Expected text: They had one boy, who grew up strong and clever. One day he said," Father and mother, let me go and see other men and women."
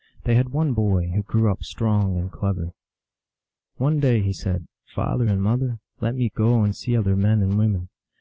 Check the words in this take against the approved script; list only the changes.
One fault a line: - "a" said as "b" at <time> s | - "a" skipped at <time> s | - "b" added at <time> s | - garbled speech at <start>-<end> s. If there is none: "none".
none